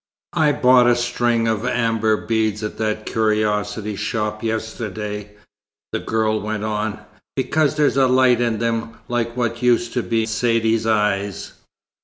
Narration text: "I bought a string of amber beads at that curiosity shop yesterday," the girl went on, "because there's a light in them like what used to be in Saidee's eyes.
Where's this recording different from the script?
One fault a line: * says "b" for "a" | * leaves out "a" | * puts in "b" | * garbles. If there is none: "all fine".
* leaves out "in"